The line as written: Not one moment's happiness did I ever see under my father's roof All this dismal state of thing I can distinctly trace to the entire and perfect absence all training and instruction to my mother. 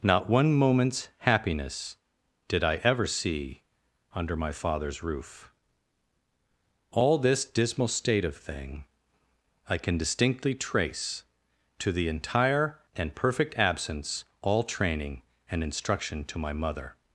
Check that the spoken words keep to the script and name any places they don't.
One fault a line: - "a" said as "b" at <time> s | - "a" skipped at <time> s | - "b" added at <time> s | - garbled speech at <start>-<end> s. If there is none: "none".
none